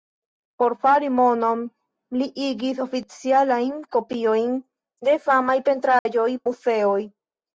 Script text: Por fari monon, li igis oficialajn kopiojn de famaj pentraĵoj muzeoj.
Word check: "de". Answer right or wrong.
right